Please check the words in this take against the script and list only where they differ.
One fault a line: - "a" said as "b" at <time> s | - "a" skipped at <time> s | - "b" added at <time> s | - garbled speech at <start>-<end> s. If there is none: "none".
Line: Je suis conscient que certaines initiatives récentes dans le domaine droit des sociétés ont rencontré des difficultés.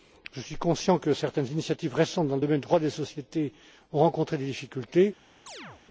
none